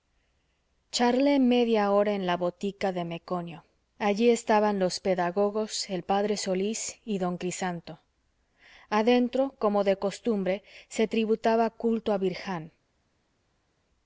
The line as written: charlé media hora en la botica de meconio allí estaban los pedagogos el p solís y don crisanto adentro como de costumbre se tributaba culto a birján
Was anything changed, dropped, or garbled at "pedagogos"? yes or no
no